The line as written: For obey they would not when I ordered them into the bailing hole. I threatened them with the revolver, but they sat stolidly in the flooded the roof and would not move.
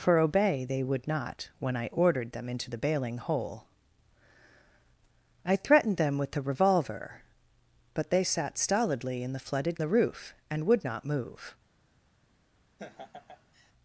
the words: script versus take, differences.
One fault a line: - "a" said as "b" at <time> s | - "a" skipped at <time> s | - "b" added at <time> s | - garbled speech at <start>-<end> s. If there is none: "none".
none